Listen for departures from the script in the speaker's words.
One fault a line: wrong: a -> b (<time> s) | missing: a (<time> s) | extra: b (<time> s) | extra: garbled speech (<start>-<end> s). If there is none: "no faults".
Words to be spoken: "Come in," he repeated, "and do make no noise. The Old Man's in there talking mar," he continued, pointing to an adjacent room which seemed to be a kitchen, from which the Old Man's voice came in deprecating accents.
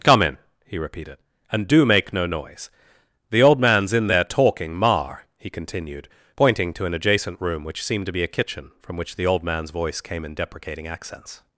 no faults